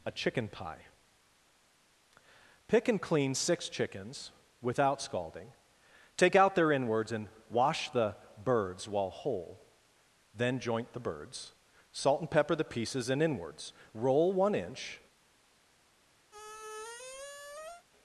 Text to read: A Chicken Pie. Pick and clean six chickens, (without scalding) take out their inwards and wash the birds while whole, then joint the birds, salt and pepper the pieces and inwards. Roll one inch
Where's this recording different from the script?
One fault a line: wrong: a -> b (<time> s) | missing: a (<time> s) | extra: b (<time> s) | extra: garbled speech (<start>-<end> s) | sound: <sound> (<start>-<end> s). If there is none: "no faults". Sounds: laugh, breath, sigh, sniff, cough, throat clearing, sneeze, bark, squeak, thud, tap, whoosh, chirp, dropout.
sound: squeak (16.3-17.9 s)